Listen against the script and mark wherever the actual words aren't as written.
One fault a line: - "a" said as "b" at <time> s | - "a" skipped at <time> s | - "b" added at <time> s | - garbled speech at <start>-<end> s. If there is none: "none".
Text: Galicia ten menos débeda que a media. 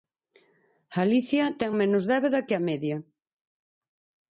none